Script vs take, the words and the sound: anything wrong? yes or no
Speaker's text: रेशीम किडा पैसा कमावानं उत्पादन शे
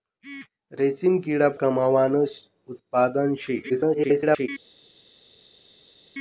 yes